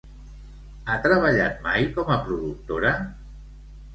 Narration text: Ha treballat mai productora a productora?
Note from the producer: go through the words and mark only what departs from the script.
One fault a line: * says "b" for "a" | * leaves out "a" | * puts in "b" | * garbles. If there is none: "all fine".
* says "com" for "productora"